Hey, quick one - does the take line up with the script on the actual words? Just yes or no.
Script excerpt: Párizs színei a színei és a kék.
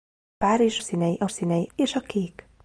yes